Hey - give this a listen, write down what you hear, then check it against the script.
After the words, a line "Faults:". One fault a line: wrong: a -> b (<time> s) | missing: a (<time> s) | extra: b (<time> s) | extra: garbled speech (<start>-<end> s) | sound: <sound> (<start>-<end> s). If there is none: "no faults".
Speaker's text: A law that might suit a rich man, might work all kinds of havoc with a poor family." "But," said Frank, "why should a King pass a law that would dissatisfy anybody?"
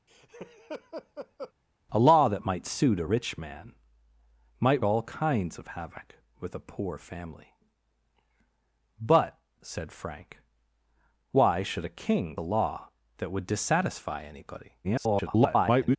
A law that might suit a rich man, might all kinds of havoc with a poor family." "But," said Frank, "why should a King a law that would dissatisfy anybody?" [garbled]
Faults:
sound: laugh (0.1-1.5 s)
missing: work (4.8 s)
missing: pass (12.3 s)
extra: garbled speech (14.8-16.0 s)